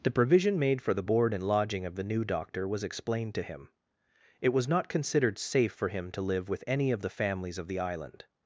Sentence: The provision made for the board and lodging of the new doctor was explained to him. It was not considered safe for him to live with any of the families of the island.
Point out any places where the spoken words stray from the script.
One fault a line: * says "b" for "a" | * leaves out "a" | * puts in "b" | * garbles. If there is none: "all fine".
all fine